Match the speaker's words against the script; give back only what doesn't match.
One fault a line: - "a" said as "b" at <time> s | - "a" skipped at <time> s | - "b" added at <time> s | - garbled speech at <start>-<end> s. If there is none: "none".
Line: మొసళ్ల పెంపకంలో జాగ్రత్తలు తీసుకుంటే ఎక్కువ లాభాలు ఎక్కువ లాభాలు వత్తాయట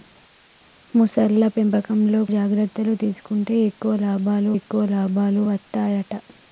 none